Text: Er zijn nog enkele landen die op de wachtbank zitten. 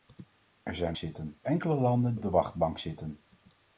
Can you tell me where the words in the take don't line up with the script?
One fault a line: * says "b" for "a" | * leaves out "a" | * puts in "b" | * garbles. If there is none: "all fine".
* says "zitten" for "nog"
* leaves out "die"